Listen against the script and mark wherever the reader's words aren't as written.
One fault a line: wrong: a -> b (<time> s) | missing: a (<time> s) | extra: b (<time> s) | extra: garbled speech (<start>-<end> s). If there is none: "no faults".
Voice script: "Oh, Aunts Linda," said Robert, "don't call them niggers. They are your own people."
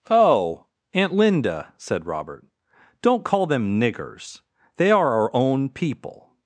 wrong: Aunts -> Aunt (0.9 s)
wrong: your -> our (5.1 s)